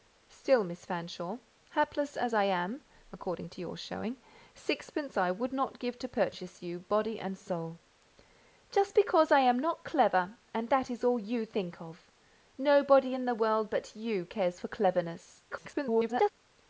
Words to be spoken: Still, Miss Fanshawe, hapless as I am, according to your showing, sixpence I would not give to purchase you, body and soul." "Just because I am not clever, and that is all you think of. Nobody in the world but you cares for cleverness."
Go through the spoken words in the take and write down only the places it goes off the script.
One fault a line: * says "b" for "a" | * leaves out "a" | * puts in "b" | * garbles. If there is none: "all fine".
* garbles